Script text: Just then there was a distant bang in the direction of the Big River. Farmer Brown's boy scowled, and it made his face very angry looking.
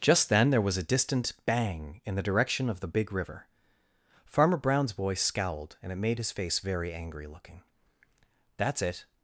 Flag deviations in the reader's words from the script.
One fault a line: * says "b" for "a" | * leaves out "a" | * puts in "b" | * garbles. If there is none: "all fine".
* puts in "That's it"